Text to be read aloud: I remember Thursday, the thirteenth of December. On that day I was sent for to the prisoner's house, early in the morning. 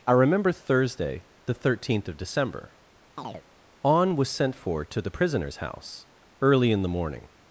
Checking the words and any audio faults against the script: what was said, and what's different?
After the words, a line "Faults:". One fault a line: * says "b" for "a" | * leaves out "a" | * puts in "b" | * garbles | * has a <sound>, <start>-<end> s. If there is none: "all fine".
I remember Thursday, the thirteenth of December. On was sent for to the prisoner's house, early in the morning.
Faults:
* has a chirp, 3.2-3.4 s
* leaves out "that day I"